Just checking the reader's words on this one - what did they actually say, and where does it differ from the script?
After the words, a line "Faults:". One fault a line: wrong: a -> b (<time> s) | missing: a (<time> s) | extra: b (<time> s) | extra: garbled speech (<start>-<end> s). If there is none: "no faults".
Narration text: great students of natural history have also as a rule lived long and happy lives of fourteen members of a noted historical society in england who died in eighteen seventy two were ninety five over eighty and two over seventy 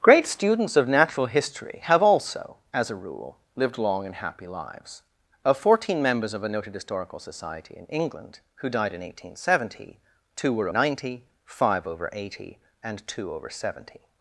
great students of natural history have also as a rule lived long and happy lives of fourteen members of a noted historical society in england who died in eighteen seventy two were ninety five over eighty and two over seventy
Faults:
no faults